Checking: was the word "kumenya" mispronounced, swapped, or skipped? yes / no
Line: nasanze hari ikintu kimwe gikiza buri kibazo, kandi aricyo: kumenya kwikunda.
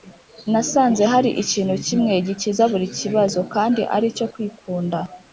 yes